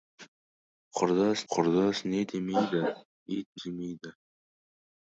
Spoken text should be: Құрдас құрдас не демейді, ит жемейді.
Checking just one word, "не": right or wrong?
right